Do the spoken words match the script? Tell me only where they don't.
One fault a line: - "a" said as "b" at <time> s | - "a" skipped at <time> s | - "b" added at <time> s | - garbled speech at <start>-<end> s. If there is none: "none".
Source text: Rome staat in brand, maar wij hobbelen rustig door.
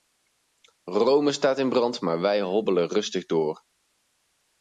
none